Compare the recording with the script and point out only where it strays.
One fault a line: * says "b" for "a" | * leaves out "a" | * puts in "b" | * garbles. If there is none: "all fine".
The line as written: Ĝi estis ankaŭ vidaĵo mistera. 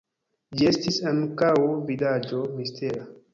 all fine